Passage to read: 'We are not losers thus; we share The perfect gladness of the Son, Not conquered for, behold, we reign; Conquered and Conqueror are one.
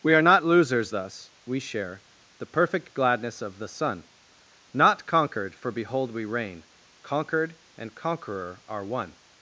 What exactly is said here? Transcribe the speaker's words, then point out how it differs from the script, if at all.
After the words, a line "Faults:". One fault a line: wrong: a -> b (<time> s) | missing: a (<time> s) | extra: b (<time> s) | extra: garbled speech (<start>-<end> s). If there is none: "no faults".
'We are not losers thus; we share The perfect gladness of the Son, Not conquered for, behold, we reign; Conquered and Conqueror are one.
Faults:
no faults